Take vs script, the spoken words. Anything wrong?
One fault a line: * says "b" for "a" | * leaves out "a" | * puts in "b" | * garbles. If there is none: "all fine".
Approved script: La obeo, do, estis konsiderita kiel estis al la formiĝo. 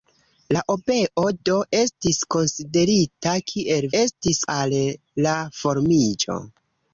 all fine